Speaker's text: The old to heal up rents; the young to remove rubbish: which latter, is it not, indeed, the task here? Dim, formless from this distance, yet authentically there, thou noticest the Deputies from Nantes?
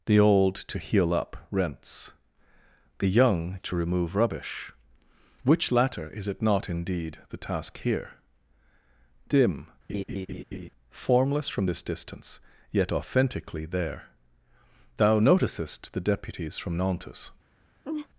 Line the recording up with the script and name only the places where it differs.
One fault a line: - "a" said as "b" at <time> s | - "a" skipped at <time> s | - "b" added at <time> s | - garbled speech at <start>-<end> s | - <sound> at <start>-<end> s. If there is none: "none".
- laugh at 9.9-10.7 s
- laugh at 17.8-18.1 s